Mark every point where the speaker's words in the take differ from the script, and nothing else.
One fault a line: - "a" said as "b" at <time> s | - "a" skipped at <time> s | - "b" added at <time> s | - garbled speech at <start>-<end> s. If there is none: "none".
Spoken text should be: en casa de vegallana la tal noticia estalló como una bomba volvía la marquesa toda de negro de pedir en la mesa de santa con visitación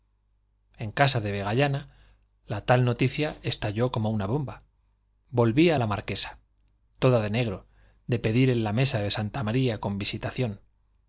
- "maría" added at 9.4 s